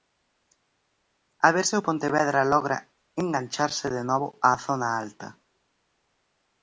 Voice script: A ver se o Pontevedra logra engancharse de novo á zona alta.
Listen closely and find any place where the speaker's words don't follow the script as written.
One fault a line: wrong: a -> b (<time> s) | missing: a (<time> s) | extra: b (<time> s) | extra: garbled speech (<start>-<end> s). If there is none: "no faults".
no faults